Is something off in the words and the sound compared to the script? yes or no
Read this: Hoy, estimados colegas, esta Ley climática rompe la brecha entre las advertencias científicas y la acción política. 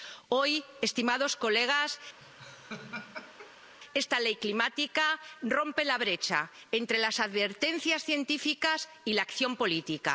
yes